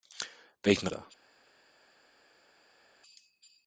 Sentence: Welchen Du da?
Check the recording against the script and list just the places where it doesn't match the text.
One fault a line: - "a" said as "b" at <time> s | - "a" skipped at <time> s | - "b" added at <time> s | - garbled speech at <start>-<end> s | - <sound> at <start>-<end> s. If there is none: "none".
none